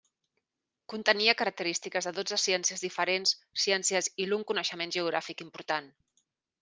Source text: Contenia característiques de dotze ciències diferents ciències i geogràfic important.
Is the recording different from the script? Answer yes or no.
yes